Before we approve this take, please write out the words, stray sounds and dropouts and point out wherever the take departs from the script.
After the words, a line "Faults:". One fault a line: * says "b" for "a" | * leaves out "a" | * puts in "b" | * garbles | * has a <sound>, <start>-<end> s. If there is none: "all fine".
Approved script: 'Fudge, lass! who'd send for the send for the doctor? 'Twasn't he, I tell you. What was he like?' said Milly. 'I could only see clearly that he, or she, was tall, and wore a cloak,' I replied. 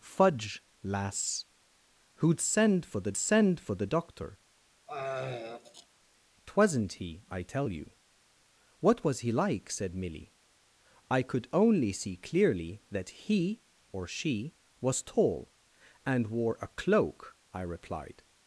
'Fudge, lass! who'd send for the send for the doctor? 'Twasn't he, I tell you. What was he like?' said Milly. 'I could only see clearly that he, or she, was tall, and wore a cloak,' I replied.
Faults:
* has a throat clearing, 4.9-5.9 s